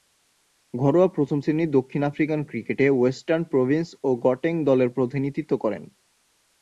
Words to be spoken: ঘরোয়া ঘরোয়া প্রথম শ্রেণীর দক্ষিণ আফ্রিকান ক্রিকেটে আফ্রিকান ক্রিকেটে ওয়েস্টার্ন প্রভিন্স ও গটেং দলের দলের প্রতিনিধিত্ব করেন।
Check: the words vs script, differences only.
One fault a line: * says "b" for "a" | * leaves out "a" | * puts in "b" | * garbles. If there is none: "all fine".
* leaves out "ঘরোয়া"
* leaves out "আফ্রিকান ক্রিকেটে"
* leaves out "দলের"